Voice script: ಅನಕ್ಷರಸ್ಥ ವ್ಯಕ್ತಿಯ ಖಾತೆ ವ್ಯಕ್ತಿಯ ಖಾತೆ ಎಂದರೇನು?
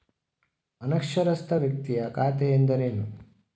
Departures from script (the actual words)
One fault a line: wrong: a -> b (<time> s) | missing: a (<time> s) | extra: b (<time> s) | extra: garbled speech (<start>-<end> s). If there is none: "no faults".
missing: ವ್ಯಕ್ತಿಯ ಖಾತೆ (2.5 s)